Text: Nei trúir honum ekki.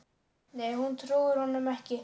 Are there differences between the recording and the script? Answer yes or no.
yes